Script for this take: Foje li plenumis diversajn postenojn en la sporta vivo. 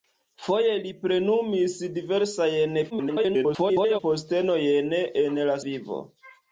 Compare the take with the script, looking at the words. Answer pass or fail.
fail